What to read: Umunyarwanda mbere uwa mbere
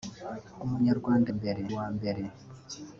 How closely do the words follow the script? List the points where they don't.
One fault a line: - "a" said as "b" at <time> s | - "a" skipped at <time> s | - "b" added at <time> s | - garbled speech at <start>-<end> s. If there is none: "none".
none